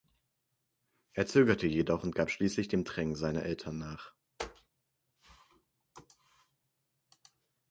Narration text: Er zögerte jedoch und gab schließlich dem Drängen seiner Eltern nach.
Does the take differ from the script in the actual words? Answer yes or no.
no